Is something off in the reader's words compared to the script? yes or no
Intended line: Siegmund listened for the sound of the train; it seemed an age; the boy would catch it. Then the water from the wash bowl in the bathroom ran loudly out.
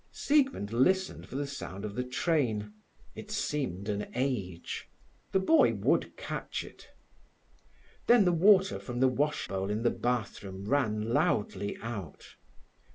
no